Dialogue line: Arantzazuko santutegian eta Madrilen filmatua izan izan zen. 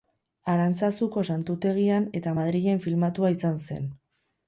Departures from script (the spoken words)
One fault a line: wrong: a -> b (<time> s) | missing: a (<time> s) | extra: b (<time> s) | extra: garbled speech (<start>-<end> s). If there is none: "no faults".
missing: izan (3.6 s)